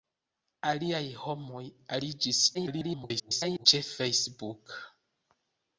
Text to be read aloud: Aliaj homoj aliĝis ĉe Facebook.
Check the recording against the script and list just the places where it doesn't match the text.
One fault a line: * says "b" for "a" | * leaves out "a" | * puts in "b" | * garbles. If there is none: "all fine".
* garbles